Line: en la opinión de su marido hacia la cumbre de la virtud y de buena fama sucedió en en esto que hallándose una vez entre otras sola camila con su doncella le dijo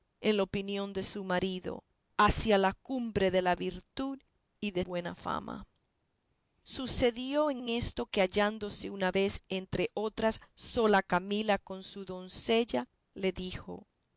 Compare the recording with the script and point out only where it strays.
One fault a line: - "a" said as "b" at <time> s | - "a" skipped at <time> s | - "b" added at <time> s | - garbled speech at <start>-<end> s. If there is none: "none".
none